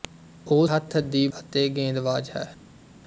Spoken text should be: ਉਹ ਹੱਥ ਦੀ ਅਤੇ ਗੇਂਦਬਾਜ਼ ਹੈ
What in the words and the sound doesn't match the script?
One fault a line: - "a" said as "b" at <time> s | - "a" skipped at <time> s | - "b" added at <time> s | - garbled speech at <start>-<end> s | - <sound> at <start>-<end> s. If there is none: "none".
none